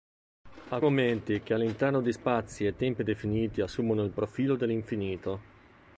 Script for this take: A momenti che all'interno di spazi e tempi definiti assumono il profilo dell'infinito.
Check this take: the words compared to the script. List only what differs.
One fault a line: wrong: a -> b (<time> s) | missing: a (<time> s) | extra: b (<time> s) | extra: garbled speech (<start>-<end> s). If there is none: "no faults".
no faults